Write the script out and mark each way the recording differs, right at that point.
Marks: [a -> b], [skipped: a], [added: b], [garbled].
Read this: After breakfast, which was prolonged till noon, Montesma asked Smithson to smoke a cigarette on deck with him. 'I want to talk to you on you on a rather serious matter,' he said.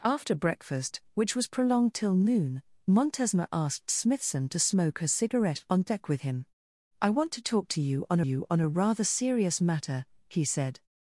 After breakfast, which was prolonged till noon, Montesma asked Smithson to smoke a cigarette on deck with him. 'I want to talk to you on you on a rather serious matter,' he said.